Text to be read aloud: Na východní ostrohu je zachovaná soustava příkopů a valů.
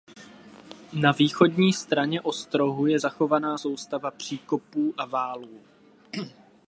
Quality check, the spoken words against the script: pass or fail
fail